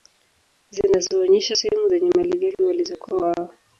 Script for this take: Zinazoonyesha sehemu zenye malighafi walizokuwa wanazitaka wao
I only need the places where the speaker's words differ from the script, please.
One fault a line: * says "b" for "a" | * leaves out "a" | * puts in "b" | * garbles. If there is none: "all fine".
* leaves out "wanazitaka"